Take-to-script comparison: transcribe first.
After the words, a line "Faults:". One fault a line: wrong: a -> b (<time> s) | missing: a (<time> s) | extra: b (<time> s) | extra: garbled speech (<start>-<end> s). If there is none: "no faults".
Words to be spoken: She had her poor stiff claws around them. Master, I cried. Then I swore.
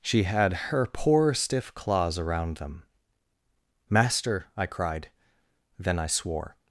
She had her poor stiff claws around them. Master, I cried. Then I swore.
Faults:
no faults